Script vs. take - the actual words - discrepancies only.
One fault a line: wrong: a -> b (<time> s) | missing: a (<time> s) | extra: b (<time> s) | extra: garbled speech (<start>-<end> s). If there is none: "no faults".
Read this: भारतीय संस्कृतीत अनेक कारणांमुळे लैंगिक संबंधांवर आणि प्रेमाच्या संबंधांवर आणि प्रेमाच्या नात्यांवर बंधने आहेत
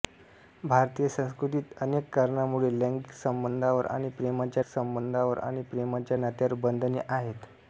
no faults